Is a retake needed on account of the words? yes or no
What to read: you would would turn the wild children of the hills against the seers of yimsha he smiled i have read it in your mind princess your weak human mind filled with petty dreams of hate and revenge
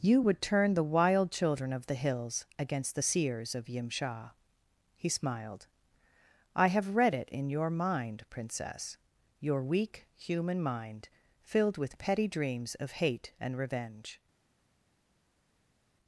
yes